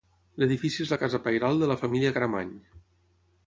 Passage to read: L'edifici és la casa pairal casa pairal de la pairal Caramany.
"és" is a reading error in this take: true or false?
false